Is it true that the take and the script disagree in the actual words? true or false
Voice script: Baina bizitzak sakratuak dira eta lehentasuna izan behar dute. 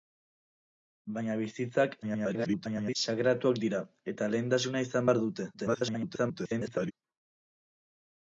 true